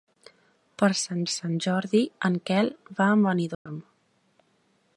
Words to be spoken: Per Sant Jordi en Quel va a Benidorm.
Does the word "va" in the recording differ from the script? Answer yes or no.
no